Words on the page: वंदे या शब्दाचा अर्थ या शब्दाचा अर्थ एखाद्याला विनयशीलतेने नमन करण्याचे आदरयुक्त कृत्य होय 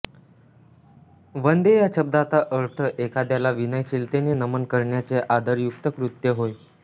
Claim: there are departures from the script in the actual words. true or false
true